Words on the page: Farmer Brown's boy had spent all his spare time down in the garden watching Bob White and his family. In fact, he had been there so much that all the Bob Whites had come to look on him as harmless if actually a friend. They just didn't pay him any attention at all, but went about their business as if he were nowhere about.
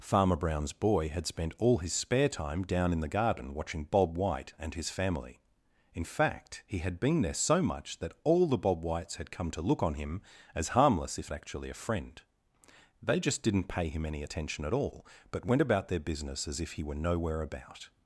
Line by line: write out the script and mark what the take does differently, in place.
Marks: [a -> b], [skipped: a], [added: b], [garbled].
Farmer Brown's boy had spent all his spare time down in the garden watching Bob White and his family. In fact, he had been there so much that all the Bob Whites had come to look on him as harmless if actually a friend. They just didn't pay him any attention at all, but went about their business as if he were nowhere about.